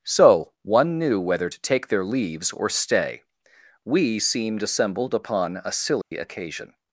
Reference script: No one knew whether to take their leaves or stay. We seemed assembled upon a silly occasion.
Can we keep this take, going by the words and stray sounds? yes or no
no